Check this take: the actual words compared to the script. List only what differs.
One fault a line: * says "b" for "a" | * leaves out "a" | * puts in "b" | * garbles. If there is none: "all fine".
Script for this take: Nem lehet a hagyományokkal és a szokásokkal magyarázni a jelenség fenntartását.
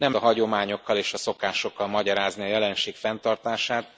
* leaves out "lehet"